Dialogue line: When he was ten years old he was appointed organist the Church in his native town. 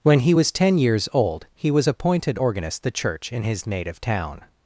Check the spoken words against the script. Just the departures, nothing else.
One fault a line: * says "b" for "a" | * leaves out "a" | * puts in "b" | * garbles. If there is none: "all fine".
all fine